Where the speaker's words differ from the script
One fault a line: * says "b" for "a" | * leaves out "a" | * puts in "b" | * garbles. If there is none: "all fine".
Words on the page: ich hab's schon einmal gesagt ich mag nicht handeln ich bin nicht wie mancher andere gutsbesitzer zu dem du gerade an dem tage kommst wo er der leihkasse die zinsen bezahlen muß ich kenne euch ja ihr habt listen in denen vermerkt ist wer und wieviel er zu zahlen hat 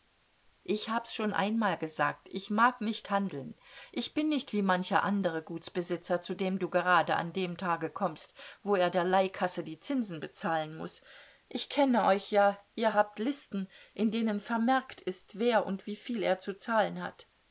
all fine